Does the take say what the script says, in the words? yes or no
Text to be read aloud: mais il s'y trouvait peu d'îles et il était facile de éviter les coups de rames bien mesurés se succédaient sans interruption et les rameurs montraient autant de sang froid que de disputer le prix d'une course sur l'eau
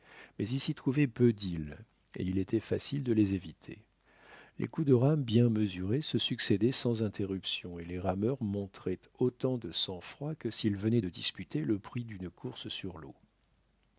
no